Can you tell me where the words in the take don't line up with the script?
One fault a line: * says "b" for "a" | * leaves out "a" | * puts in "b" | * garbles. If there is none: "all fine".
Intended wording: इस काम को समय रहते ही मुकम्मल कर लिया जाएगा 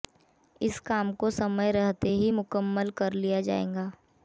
all fine